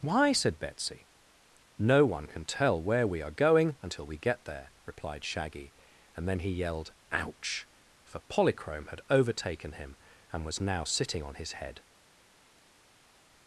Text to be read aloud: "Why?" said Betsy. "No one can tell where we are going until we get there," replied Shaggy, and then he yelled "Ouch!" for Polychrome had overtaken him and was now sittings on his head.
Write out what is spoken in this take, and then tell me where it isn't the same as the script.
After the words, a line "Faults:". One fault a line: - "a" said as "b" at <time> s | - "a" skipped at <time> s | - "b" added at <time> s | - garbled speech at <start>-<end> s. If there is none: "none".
"Why?" said Betsy. "No one can tell where we are going until we get there," replied Shaggy, and then he yelled "Ouch!" for Polychrome had overtaken him and was now sitting on his head.
Faults:
- "sittings" said as "sitting" at 10.8 s